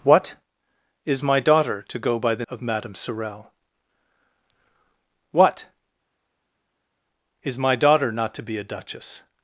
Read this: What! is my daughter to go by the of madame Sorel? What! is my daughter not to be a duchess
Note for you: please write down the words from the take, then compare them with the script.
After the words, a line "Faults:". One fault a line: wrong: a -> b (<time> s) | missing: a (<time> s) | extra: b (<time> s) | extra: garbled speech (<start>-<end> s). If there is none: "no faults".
What! is my daughter to go by the of madame Sorel? What! is my daughter not to be a duchess
Faults:
no faults